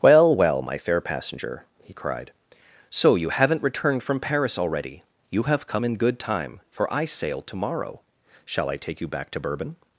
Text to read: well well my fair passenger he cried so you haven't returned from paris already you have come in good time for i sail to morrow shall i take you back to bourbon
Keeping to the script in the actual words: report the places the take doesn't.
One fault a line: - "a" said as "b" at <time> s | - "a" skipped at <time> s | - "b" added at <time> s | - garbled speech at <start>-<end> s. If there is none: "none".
none